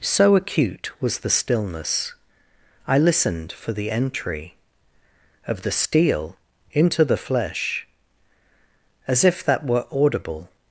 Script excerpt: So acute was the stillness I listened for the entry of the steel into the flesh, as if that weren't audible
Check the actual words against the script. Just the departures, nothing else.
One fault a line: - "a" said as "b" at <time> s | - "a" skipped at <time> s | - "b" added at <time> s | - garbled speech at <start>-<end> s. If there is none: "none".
- "weren't" said as "were" at 9.6 s